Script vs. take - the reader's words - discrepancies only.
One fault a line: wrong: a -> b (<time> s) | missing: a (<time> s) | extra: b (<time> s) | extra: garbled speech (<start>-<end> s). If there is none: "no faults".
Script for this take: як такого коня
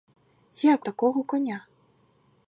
no faults